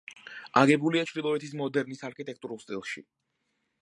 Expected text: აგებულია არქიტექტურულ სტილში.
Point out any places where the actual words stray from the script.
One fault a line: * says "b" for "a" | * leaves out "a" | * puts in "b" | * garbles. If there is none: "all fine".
* puts in "ჩრდილოეთის მოდერნის"